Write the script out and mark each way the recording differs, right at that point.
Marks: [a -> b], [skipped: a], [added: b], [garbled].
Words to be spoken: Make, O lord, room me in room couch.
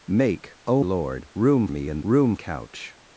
Make, O lord, room me in room couch.